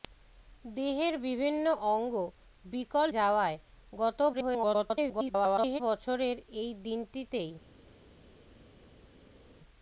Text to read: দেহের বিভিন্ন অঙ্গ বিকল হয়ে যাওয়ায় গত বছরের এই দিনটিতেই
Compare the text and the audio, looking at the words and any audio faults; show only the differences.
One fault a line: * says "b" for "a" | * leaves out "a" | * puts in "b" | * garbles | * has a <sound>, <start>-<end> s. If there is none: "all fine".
* leaves out "হয়ে"
* garbles